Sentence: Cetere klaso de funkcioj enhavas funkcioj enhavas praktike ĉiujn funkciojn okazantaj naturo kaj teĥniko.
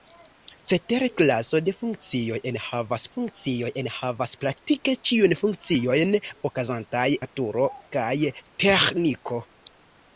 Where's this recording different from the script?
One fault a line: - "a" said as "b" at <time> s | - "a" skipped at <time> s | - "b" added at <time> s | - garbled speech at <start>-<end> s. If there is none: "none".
none